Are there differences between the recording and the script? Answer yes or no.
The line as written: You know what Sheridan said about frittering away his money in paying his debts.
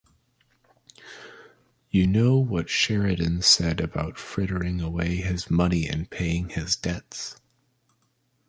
no